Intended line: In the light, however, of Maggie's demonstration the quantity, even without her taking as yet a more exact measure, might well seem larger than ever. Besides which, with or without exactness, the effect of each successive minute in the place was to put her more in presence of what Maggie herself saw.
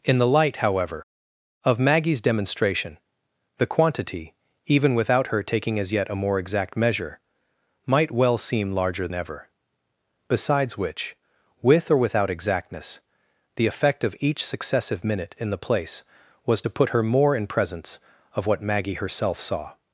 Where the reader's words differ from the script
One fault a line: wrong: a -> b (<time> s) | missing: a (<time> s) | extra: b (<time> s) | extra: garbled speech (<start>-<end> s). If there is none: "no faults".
missing: than (9.1 s)